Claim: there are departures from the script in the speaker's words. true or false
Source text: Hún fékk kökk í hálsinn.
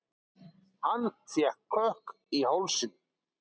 true